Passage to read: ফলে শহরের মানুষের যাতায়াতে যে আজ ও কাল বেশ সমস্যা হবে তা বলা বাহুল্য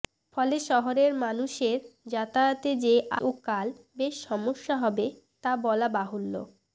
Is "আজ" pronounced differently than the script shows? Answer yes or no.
yes